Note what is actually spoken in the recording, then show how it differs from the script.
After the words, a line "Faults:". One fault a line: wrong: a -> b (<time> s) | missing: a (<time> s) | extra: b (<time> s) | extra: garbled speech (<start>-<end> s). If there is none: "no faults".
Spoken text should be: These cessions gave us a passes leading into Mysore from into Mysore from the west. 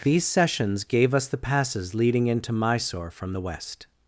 These cessions gave us the passes leading into Mysore from the west.
Faults:
wrong: a -> the (1.3 s)
missing: into Mysore from (3.4 s)